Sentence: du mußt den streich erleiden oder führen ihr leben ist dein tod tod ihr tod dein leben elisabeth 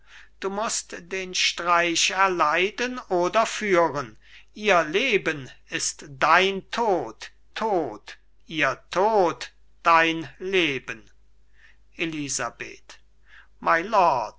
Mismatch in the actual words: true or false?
false